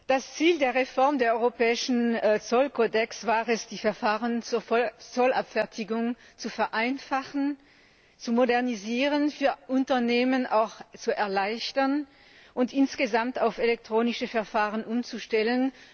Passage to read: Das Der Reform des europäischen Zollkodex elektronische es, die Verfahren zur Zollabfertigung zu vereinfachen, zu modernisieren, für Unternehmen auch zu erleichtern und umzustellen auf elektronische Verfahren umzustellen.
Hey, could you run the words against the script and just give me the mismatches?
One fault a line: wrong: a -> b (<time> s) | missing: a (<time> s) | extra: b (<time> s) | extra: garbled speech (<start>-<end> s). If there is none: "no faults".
extra: Ziel (0.3 s)
wrong: elektronische -> war (3.3 s)
wrong: umzustellen -> insgesamt (12.7 s)